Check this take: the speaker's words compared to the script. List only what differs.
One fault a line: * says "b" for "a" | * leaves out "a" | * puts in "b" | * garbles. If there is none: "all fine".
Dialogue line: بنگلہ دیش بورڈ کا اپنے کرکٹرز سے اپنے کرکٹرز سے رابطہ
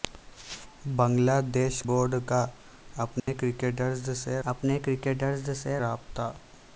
all fine